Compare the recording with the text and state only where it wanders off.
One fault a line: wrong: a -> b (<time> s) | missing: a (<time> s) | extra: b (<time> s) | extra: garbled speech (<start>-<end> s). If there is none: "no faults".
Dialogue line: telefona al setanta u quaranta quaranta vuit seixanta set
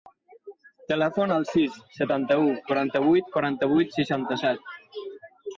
extra: sis (1.5 s)
extra: vuit (3.1 s)